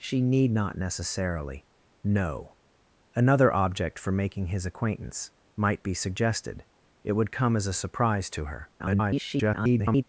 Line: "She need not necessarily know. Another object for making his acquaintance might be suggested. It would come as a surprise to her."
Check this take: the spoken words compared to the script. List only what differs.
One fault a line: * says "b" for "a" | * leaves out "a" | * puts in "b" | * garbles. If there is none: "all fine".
* garbles